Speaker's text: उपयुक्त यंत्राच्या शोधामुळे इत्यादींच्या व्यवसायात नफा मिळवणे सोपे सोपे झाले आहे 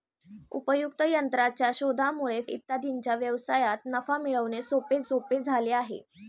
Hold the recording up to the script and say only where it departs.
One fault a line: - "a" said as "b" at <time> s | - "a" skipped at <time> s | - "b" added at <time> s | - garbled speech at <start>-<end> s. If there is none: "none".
none